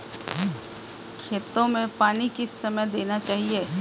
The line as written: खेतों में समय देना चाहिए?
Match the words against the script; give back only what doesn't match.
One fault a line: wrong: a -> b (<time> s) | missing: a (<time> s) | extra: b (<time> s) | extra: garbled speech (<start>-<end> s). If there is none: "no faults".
extra: पानी किस (2.0 s)